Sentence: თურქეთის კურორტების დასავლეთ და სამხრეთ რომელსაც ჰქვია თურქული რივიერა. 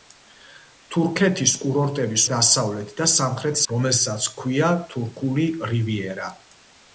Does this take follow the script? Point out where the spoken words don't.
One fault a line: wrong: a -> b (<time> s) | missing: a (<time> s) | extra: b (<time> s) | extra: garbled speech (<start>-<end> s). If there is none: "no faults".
no faults